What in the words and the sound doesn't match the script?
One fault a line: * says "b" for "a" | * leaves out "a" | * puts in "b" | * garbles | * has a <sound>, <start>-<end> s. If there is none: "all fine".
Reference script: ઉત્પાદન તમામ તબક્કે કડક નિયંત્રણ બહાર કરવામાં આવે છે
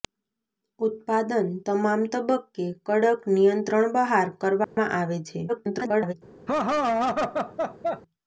* has a dropout, 4.6-4.8 s
* garbles
* has a laugh, 6.5-8.0 s